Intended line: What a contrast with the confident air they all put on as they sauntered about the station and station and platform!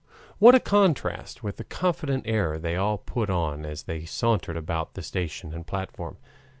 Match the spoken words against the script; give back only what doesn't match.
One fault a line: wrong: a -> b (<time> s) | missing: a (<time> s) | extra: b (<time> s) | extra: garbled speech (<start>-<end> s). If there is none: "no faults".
missing: station and (5.7 s)